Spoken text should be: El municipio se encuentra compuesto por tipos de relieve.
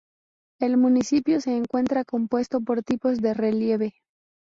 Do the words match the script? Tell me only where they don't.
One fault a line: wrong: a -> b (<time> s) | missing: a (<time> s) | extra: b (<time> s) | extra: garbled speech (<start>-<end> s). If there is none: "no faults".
no faults